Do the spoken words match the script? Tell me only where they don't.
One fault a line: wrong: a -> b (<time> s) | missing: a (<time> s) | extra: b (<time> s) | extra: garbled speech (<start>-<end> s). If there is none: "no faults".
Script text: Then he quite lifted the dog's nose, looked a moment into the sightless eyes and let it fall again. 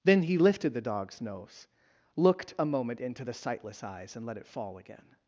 missing: quite (0.4 s)